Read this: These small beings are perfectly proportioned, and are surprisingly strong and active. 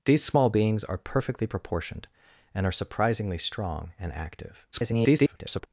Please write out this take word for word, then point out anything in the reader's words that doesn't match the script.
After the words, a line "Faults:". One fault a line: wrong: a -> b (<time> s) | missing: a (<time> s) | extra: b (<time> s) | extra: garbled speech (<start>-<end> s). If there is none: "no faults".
These small beings are perfectly proportioned, and are surprisingly strong and active. [garbled]
Faults:
extra: garbled speech (4.7-5.7 s)